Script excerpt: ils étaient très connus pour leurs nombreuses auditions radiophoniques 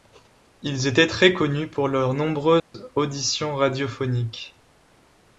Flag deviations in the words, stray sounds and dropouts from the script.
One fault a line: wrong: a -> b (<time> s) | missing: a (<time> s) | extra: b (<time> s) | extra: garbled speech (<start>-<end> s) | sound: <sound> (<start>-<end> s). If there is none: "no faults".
sound: dropout (2.6-2.7 s)